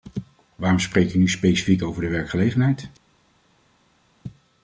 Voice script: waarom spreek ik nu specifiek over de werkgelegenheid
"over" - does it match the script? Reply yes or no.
yes